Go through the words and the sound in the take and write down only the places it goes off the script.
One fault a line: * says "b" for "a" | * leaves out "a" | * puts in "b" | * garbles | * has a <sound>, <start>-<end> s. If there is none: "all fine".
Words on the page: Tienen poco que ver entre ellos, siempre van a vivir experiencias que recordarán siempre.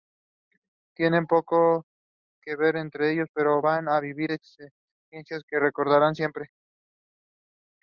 * says "pero" for "siempre"